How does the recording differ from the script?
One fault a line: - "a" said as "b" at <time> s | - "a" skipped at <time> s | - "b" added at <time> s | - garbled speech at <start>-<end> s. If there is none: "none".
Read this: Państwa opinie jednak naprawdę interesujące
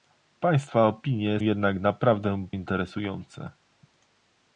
none